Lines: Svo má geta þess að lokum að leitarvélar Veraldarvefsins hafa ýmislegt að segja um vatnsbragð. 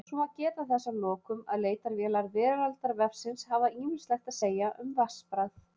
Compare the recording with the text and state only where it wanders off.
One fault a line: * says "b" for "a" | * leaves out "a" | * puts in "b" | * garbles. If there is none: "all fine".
all fine